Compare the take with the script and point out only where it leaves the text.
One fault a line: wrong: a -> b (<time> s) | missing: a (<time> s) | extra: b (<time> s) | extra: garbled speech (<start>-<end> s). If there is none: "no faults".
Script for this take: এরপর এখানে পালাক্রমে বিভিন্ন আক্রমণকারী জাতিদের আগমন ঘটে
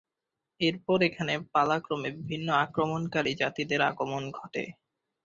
no faults